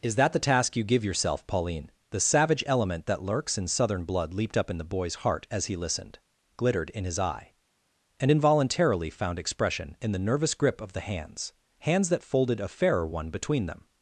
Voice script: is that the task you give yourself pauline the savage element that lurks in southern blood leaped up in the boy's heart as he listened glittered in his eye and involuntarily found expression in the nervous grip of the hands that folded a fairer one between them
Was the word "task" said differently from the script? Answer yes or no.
no